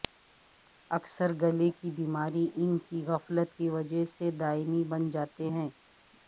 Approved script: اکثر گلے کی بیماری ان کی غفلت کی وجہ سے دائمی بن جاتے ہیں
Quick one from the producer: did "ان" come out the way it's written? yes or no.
yes